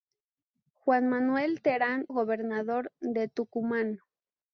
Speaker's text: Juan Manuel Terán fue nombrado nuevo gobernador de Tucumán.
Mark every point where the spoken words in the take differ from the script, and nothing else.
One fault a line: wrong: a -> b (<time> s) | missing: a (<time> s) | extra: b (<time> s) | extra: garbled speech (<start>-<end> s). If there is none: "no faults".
missing: fue nombrado nuevo (2.1 s)